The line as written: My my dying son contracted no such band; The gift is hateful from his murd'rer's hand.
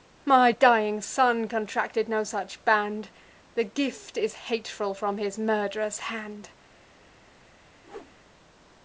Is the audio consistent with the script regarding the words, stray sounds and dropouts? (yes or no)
no